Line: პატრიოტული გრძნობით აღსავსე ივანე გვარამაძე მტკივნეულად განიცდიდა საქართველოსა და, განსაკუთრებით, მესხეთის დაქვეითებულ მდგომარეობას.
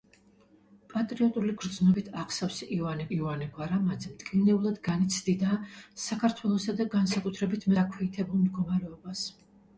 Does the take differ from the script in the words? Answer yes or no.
yes